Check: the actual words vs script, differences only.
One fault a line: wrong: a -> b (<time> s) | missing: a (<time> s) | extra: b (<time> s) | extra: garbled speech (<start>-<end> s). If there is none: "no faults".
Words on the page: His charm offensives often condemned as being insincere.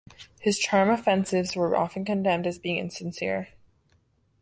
extra: were (1.6 s)